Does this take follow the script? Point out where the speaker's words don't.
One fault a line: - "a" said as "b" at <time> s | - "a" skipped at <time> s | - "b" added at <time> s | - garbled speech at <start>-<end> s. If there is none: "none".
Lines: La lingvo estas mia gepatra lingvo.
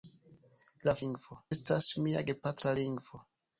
none